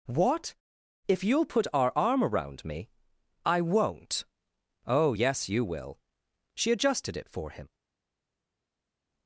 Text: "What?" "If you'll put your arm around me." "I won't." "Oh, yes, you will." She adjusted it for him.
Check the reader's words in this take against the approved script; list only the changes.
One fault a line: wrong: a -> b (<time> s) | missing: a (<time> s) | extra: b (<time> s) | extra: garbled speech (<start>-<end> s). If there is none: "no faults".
wrong: your -> our (1.7 s)